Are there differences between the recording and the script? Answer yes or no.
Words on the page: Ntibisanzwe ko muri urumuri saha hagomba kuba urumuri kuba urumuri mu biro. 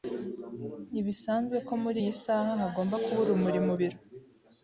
yes